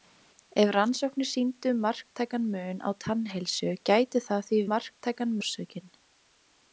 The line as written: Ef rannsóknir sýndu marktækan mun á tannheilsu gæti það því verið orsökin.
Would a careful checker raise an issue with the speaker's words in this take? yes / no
yes